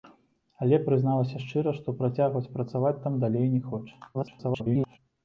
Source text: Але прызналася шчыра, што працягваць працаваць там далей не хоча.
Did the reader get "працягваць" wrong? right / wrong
right